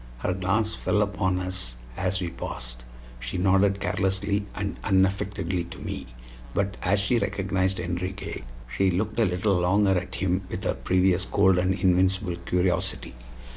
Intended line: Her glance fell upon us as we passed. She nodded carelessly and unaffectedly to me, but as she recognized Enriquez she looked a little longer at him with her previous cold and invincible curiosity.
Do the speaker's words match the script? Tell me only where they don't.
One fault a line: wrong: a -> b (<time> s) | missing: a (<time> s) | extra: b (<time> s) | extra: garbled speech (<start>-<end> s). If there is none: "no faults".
no faults